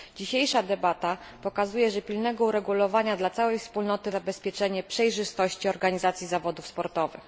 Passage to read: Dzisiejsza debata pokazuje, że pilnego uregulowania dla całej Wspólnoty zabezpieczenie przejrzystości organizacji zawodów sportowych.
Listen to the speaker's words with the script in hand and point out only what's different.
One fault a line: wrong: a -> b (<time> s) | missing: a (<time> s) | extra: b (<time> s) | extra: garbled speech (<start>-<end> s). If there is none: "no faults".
no faults